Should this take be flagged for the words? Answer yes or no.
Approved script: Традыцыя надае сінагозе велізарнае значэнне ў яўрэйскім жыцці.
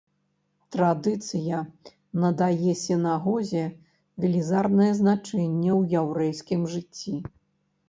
no